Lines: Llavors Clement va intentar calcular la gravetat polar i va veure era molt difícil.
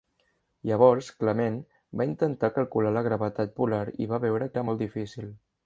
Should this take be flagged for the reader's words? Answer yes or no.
no